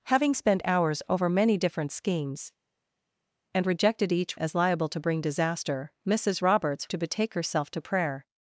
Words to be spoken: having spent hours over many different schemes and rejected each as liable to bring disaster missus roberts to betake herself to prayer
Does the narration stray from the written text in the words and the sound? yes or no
no